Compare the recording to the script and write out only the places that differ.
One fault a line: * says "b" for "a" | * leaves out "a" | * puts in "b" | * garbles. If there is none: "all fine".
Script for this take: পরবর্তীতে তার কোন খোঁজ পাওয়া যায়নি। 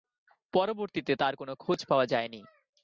all fine